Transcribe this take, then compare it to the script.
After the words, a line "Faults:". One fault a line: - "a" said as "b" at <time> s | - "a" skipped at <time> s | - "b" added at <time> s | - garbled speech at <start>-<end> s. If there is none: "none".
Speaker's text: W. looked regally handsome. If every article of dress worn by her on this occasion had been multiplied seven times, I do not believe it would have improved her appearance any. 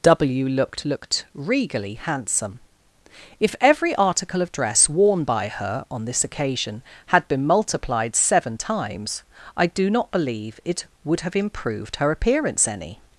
W. looked looked regally handsome. If every article of dress worn by her on this occasion had been multiplied seven times, I do not believe it would have improved her appearance any.
Faults:
- "looked" added at 0.8 s